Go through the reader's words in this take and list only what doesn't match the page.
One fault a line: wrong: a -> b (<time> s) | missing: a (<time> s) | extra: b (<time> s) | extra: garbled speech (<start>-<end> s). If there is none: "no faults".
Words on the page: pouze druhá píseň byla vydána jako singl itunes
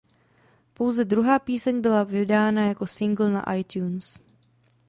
extra: na (3.3 s)